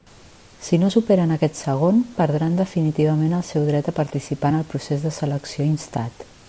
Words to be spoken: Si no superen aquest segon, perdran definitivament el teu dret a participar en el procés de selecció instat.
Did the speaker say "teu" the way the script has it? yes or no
no